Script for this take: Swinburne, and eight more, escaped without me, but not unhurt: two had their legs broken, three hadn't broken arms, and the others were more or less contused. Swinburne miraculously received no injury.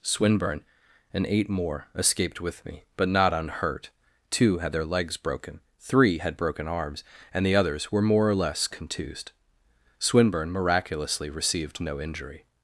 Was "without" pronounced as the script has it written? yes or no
no